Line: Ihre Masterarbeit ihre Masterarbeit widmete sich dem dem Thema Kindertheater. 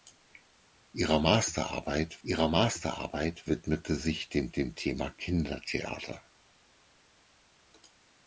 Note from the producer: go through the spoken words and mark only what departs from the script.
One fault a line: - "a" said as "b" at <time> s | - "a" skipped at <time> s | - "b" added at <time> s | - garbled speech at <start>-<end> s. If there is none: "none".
none